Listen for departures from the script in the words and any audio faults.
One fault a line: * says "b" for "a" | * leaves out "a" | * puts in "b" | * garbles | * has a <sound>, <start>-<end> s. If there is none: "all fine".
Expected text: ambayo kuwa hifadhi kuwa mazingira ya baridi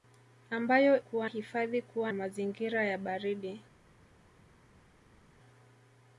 all fine